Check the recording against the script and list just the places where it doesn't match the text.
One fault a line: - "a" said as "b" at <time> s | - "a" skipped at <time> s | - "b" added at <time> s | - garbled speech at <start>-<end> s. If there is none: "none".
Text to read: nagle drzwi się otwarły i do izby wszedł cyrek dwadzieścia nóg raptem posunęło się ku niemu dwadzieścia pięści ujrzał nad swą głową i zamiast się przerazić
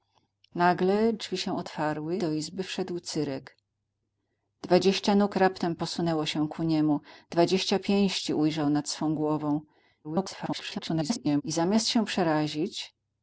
- "i" skipped at 2.2 s
- garbled speech at 10.0-11.4 s